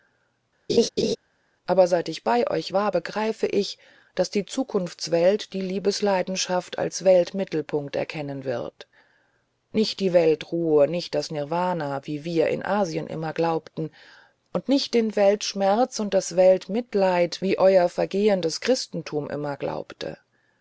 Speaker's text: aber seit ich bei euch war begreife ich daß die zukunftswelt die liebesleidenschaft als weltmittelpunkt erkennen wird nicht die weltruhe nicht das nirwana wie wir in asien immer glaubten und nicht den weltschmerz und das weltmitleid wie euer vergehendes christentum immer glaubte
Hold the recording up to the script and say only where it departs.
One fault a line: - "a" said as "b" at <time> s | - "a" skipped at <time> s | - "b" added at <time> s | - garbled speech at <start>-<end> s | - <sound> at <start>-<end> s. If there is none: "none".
- laugh at 0.7-1.2 s